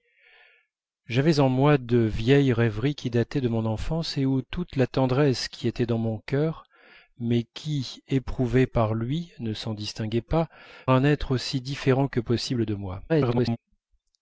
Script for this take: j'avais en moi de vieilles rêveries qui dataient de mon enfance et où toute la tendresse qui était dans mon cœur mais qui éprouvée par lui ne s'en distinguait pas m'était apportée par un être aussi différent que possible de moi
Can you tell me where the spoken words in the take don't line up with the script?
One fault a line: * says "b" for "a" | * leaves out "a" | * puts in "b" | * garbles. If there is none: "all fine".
* leaves out "m'était apportée par"
* garbles